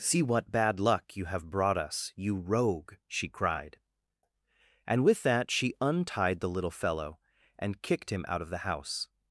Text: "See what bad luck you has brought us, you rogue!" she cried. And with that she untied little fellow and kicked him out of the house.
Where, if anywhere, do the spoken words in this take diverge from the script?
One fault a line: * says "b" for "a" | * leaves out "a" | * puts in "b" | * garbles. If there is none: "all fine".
* says "have" for "has"
* puts in "the"